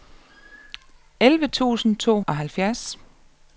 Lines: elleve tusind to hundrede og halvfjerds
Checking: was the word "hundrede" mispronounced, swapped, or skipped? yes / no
yes